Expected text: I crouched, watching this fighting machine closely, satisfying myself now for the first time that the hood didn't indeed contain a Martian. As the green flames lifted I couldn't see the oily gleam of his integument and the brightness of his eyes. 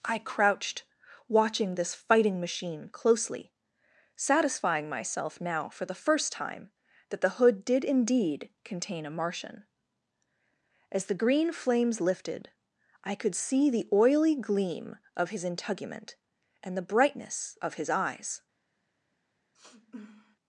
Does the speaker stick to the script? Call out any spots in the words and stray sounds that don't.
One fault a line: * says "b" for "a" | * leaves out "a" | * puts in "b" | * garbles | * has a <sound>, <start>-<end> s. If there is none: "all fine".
* says "did" for "didn't"
* says "could" for "couldn't"
* has a sniff, 19.5-20.4 s